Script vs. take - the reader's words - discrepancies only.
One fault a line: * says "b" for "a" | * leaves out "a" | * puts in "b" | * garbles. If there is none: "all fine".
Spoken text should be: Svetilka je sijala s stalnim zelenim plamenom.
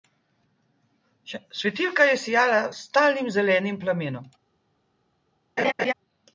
all fine